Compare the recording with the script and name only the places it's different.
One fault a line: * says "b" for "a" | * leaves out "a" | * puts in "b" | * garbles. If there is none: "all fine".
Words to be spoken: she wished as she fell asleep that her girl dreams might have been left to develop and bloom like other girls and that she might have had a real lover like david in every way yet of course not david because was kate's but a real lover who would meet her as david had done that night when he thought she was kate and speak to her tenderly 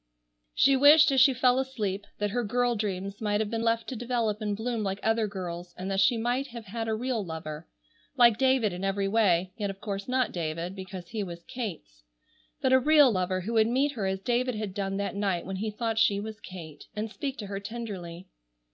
* puts in "he"